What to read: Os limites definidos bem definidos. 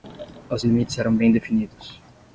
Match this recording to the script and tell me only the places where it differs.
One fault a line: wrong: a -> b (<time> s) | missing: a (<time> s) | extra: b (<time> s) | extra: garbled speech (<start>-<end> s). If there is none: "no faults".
wrong: definidos -> eram (1.0 s)